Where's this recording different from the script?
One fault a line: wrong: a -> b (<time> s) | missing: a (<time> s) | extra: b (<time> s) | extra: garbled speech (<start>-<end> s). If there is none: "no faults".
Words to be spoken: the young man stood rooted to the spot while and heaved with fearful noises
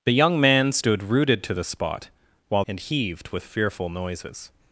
no faults